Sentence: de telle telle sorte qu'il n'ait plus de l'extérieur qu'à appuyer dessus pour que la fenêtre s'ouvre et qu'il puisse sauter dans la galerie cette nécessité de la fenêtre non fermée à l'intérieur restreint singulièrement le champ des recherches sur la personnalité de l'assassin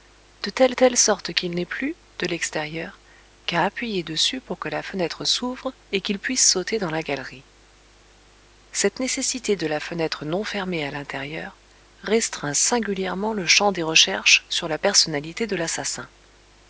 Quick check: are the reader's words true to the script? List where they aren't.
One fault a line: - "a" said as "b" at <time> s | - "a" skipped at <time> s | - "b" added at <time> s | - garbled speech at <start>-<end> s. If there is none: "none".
none